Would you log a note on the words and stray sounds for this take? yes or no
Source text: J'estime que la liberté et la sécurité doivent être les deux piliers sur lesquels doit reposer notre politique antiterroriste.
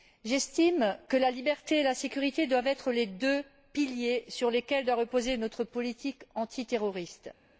no